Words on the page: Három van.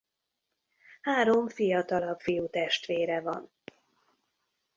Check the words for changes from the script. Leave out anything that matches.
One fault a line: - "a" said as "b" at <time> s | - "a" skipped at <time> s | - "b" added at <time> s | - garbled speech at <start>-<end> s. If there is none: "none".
- "fiatalabb fiútestvére" added at 1.5 s